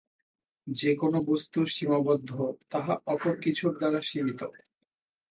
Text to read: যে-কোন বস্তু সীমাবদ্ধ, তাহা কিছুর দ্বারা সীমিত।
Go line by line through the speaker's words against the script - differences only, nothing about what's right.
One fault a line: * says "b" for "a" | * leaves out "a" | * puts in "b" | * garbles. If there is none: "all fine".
* puts in "অপর"